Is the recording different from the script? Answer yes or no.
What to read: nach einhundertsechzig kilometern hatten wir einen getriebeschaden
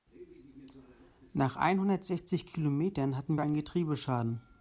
no